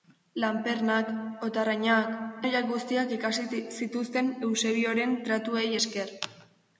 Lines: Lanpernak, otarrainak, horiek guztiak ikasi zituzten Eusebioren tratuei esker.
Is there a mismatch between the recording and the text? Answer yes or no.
no